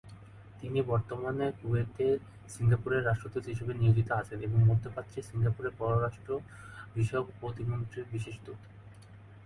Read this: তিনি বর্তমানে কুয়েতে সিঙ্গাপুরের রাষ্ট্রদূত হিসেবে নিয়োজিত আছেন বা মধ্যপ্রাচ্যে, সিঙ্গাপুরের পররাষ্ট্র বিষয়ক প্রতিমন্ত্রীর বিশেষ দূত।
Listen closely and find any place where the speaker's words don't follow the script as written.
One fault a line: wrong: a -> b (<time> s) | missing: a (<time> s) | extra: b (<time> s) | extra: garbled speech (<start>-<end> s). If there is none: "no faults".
wrong: বা -> এবং (4.4 s)